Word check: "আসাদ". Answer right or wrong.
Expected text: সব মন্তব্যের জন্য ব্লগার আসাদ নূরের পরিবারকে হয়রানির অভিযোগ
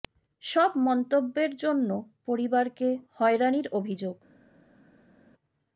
wrong